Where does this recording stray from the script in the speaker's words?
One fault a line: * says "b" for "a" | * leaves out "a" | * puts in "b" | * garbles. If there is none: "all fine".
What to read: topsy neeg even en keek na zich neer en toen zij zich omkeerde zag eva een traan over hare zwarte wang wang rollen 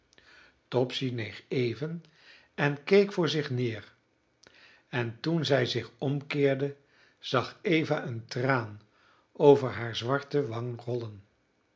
* says "voor" for "na"
* leaves out "wang"